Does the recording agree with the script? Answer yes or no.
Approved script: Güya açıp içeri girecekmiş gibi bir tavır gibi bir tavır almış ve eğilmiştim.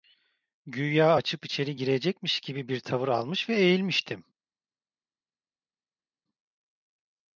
no